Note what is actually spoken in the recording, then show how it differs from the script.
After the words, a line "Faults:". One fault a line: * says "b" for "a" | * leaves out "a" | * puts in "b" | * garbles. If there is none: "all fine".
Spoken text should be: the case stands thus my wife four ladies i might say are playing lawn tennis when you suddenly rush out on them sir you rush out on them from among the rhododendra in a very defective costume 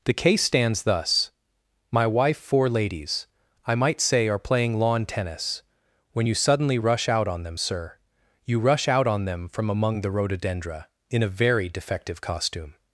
the case stands thus my wife four ladies i might say are playing lawn tennis when you suddenly rush out on them sir you rush out on them from among the rhododendra in a very defective costume
Faults:
all fine